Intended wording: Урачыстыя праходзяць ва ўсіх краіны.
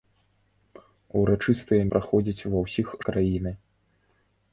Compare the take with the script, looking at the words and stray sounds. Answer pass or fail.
pass